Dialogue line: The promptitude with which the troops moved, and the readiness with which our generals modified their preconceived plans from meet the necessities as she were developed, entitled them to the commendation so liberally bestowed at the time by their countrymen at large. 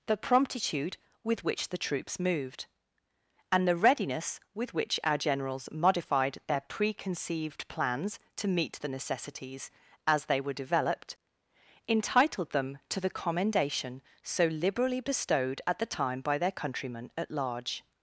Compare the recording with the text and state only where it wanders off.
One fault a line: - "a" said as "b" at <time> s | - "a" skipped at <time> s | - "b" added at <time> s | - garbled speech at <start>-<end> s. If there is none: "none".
- "from" said as "to" at 8.4 s
- "she" said as "they" at 10.3 s